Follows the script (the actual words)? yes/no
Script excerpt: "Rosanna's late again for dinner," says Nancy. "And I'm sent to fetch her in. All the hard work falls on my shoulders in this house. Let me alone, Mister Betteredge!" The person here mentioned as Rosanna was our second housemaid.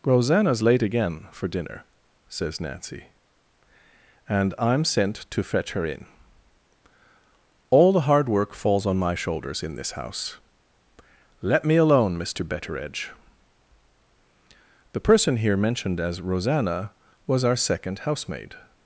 yes